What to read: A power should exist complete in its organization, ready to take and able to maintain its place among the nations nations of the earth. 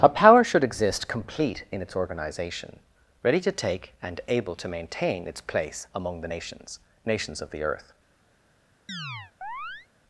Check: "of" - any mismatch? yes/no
no